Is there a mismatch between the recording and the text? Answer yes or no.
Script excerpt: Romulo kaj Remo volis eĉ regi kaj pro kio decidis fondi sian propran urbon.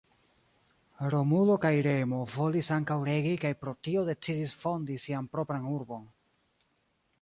yes